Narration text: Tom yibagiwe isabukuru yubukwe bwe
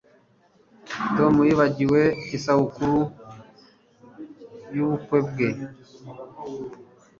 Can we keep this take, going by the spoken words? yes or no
yes